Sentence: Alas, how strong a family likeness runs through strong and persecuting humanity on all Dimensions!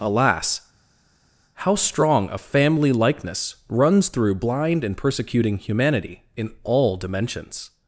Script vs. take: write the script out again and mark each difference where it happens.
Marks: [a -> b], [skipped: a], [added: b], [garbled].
Alas, how strong a family likeness runs through [strong -> blind] and persecuting humanity [on -> in] all Dimensions!